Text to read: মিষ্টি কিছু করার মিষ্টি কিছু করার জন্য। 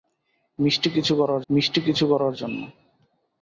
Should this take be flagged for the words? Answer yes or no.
no